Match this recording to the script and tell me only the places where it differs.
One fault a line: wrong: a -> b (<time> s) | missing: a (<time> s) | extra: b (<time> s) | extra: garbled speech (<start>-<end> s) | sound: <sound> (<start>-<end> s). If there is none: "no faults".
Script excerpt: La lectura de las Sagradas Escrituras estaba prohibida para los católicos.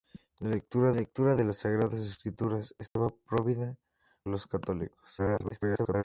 extra: lectura (0.9 s)
sound: dropout (2.9-3.0 s)
missing: para (3.8 s)
extra: garbled speech (5.2-6.0 s)